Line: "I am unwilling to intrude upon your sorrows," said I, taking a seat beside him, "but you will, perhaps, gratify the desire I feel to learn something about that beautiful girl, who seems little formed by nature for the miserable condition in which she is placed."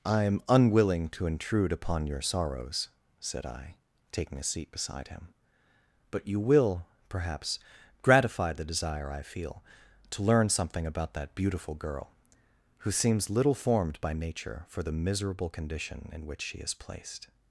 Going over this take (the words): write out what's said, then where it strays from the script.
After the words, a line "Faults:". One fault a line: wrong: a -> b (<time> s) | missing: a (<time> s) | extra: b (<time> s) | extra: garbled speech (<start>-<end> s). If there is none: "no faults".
"I am unwilling to intrude upon your sorrows," said I, taking a seat beside him, "but you will, perhaps, gratify the desire I feel to learn something about that beautiful girl, who seems little formed by nature for the miserable condition in which she is placed."
Faults:
no faults